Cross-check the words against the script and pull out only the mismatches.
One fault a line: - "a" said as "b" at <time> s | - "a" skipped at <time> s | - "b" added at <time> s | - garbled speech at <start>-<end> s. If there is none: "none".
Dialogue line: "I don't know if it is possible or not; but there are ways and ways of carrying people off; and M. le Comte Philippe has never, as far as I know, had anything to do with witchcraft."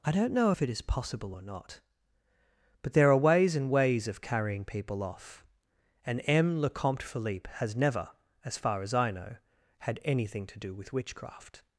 none